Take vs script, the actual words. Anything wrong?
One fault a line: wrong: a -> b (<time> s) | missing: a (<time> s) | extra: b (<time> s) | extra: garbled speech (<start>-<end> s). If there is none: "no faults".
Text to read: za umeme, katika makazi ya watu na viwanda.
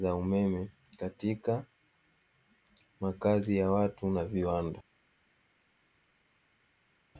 no faults